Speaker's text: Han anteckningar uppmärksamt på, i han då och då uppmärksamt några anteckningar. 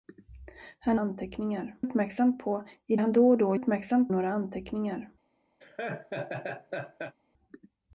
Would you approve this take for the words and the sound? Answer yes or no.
no